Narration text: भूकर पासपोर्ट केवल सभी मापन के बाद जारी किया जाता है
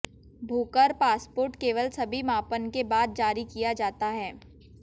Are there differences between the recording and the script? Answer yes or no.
no